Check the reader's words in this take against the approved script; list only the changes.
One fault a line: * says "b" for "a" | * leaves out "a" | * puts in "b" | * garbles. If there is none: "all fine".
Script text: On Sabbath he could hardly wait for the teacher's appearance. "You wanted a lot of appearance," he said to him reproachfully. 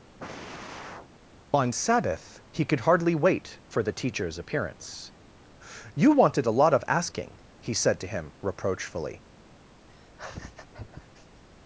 * says "asking" for "appearance"